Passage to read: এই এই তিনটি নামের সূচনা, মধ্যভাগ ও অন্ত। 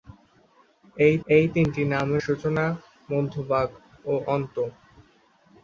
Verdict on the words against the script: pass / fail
pass